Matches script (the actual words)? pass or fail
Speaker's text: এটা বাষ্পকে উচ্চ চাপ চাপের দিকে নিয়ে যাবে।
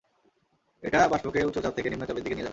fail